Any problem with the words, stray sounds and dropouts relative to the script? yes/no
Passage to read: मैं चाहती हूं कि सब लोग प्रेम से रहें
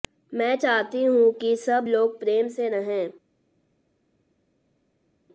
no